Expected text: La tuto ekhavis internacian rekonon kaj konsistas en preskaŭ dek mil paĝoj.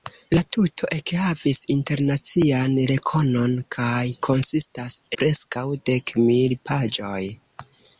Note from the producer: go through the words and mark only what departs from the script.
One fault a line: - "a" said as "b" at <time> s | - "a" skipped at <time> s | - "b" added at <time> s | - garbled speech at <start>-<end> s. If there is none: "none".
- "en" skipped at 5.0 s